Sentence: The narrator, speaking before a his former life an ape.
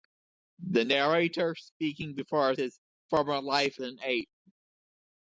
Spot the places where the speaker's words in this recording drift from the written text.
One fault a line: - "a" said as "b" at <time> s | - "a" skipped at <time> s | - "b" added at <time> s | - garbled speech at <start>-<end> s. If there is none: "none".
none